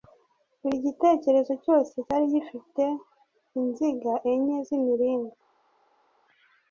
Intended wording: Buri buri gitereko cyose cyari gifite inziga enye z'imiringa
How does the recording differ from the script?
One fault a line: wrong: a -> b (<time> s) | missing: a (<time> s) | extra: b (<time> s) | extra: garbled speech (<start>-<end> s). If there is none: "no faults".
missing: buri (0.8 s)